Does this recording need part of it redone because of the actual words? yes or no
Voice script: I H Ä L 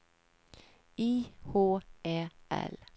no